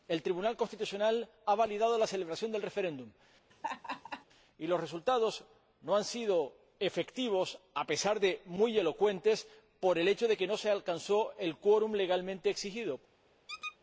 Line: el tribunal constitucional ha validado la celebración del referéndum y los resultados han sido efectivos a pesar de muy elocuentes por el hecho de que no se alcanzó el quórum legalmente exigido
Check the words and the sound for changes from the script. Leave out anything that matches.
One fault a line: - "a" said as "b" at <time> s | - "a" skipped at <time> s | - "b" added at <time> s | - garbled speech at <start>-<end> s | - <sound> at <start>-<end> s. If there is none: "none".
- laugh at 3.5-4.2 s
- "no" added at 5.8 s
- squeak at 13.5-13.8 s